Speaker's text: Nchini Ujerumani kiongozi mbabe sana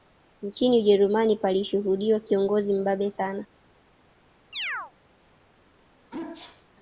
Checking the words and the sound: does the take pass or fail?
fail